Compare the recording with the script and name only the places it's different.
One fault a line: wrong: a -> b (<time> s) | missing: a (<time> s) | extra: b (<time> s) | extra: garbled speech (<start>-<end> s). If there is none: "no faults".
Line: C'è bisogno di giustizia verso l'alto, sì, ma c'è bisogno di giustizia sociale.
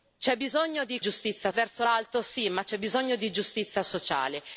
no faults